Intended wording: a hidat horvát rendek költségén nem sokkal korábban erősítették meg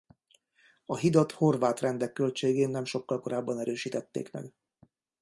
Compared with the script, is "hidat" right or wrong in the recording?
right